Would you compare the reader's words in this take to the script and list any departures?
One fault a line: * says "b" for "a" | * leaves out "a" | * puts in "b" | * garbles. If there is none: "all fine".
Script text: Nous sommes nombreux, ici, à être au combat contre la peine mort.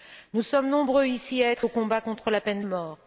all fine